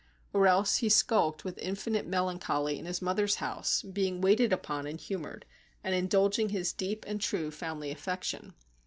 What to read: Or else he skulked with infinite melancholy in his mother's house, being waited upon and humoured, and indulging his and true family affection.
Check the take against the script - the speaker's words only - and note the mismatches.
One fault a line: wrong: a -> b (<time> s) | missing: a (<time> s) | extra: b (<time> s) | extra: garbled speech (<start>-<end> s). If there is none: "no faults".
extra: deep (6.7 s)